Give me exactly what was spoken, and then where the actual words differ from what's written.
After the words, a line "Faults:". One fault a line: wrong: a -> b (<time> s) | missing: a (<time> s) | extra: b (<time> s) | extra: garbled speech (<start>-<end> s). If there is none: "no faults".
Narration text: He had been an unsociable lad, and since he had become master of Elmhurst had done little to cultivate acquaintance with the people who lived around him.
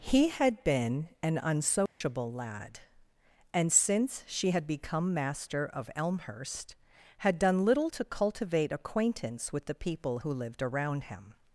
He had been an unsociable lad, and since she had become master of Elmhurst had done little to cultivate acquaintance with the people who lived around him.
Faults:
wrong: he -> she (4.2 s)